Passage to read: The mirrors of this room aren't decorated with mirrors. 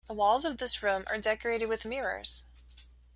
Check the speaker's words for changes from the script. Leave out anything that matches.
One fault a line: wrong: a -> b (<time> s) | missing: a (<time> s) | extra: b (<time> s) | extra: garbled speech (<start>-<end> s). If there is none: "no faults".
wrong: mirrors -> walls (0.1 s)
wrong: aren't -> are (1.1 s)